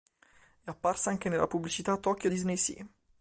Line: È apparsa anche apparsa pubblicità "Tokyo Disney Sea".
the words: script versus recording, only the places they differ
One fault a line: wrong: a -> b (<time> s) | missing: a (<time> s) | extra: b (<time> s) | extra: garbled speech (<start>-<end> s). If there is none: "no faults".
wrong: apparsa -> nella (1.3 s)